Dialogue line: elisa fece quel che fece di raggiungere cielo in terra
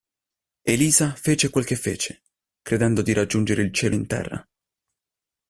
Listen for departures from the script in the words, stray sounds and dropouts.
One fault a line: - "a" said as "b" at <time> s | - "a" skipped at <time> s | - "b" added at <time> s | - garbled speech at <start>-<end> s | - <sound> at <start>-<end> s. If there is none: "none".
- "credendo" added at 2.6 s
- "il" added at 3.6 s